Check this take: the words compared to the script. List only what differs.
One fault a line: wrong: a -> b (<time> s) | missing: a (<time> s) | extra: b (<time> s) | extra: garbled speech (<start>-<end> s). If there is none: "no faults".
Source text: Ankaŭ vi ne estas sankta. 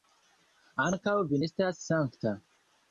missing: ne (1.4 s)